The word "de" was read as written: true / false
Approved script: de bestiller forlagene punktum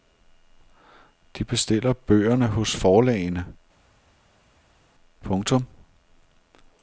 true